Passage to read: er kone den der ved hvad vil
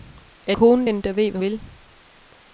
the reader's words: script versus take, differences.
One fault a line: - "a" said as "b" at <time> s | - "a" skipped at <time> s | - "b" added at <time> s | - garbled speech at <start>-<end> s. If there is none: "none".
none